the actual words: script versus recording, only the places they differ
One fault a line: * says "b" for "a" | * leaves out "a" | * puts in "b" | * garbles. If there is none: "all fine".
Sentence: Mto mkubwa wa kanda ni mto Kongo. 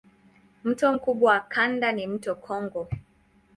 all fine